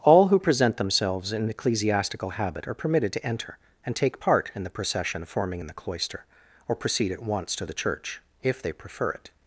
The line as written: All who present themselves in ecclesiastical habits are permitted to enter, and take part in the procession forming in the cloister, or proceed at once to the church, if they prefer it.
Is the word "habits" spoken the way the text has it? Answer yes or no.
no